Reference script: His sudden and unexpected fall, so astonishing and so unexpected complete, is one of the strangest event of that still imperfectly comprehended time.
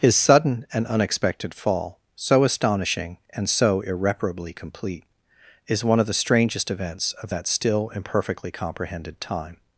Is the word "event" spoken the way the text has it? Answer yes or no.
no